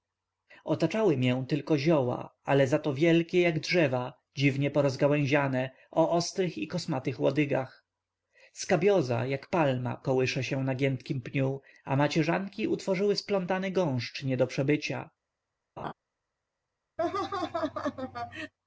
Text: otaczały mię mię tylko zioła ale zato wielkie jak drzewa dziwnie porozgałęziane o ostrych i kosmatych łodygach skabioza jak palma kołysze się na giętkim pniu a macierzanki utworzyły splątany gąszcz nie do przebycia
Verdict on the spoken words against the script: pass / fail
fail